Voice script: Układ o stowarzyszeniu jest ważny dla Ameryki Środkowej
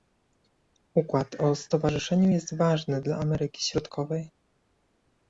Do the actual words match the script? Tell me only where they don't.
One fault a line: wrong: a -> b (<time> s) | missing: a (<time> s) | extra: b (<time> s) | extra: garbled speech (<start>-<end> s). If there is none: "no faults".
no faults